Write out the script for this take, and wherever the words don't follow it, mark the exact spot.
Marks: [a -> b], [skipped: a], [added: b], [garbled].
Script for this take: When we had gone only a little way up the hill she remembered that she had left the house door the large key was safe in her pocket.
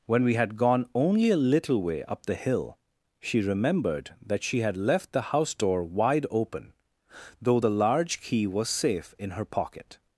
When we had gone only a little way up the hill she remembered that she had left the house door [added: wide open though] the large key was safe in her pocket.